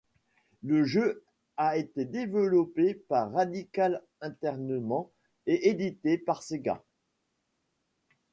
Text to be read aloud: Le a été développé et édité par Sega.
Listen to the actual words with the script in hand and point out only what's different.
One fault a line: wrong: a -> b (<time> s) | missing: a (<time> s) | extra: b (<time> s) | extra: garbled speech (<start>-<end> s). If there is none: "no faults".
extra: jeu (0.8 s)
extra: par Radical Entertainment (3.0 s)